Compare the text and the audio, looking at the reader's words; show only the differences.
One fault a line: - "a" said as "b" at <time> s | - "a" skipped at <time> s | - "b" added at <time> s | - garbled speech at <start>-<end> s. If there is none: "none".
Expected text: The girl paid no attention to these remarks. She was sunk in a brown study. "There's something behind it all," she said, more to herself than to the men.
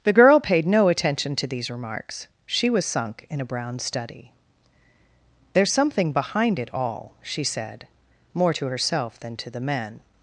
none